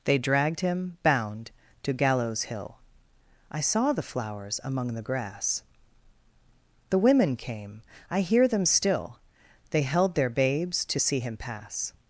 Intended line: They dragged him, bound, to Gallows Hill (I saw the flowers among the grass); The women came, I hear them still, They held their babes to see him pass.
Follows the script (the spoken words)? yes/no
yes